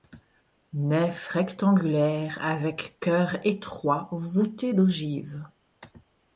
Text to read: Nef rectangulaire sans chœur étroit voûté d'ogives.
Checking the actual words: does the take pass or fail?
fail